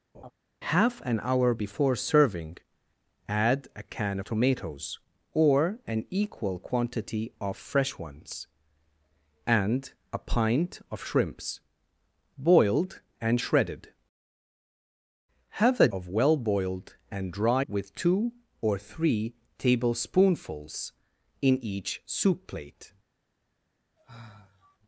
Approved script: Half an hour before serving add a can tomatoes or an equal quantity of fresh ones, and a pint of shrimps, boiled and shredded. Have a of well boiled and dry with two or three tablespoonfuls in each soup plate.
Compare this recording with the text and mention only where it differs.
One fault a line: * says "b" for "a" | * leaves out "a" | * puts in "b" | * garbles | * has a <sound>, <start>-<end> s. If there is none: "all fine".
* has a laugh, 0.1-0.3 s
* has a sigh, 24.0-24.8 s